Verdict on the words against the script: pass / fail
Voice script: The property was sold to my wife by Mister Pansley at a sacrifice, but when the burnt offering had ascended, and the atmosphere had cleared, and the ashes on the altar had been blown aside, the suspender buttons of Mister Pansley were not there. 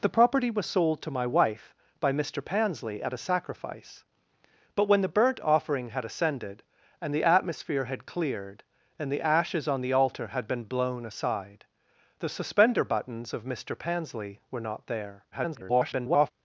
fail